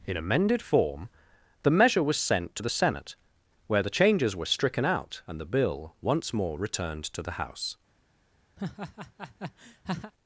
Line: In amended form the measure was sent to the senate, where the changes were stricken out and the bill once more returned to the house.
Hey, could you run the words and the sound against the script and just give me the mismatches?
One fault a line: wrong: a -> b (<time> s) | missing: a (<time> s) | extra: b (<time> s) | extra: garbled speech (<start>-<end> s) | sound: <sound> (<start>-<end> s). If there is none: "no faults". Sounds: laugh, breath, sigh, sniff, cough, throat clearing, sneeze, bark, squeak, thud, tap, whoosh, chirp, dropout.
sound: laugh (8.6-10.1 s)